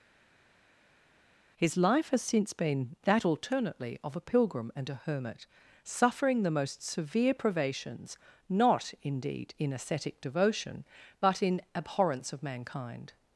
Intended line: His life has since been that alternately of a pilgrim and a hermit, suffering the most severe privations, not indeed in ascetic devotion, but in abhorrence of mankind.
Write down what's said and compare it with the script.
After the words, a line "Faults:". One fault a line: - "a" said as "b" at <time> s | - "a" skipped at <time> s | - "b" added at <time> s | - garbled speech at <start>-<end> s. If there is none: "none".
His life has since been that alternately of a pilgrim and a hermit, suffering the most severe privations, not indeed in ascetic devotion, but in abhorrence of mankind.
Faults:
none